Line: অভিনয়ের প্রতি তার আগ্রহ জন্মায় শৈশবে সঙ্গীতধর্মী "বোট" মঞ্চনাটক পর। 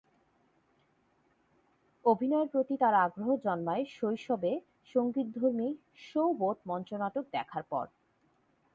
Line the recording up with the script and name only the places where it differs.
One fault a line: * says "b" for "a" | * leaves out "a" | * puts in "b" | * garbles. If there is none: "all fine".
* puts in "শো"
* puts in "দেখার"